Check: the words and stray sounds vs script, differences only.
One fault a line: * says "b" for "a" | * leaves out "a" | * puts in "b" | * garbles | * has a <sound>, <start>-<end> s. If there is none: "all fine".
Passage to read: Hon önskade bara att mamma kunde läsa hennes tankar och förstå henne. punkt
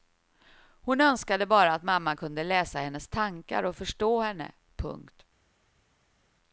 all fine